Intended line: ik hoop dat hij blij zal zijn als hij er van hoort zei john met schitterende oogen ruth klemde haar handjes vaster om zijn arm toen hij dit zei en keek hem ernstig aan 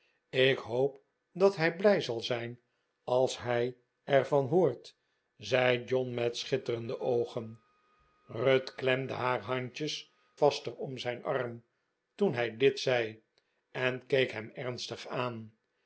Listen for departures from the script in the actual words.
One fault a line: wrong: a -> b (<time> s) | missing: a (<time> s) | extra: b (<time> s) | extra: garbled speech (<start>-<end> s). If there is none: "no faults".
no faults